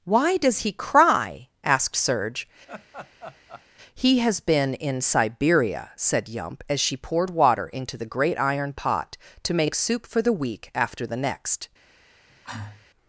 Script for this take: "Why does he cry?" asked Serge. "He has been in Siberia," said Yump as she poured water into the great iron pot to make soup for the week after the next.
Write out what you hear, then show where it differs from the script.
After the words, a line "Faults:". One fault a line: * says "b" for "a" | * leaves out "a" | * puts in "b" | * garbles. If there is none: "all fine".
"Why does he cry?" asked Serge. "He has been in Siberia," said Yump as she poured water into the great iron pot to make soup for the week after the next.
Faults:
all fine